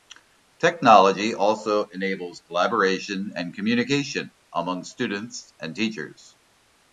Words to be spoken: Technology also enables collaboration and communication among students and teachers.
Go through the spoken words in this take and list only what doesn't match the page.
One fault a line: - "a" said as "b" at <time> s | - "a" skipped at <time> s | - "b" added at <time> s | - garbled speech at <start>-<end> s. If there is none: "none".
none